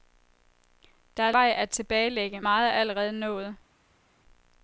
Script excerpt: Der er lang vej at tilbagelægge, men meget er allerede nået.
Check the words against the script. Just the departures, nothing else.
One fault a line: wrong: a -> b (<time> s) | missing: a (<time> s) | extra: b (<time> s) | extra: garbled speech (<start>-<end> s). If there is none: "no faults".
missing: lang (1.3 s)
missing: men (2.4 s)